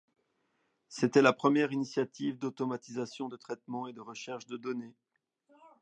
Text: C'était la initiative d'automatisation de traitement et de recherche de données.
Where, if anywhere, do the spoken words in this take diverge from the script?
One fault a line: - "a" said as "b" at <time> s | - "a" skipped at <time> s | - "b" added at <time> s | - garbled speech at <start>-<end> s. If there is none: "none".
- "première" added at 1.3 s